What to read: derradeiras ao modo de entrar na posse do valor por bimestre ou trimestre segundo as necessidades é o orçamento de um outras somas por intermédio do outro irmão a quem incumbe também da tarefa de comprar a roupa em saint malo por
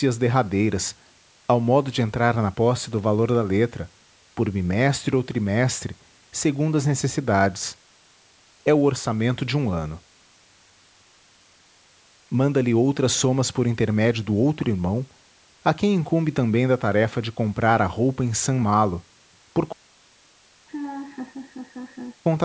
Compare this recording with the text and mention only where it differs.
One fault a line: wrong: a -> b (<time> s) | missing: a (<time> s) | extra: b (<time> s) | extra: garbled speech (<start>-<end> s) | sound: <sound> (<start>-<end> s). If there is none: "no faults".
extra: da letra (3.3 s)
extra: ano manda lhe (9.7 s)
sound: laugh (20.7-22.2 s)